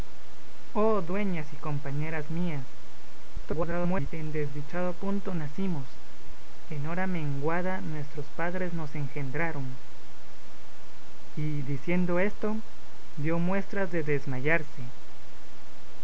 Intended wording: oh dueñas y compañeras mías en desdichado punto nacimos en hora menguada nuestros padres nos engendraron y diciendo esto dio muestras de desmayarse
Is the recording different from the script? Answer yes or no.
yes